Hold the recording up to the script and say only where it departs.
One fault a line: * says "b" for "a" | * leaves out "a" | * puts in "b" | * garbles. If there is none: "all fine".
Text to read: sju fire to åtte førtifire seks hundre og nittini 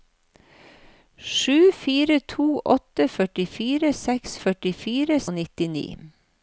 * says "førtifire" for "hundre"